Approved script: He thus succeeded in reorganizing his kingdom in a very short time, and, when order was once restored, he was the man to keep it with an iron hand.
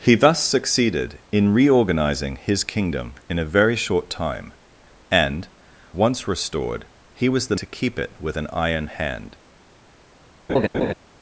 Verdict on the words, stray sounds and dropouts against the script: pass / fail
fail